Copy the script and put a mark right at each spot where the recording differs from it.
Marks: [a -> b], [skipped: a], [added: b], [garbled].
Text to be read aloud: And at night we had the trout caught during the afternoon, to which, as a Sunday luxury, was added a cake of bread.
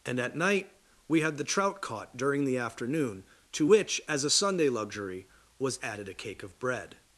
And at night we had the trout caught during the afternoon, to which, as a Sunday luxury, was added a cake of bread.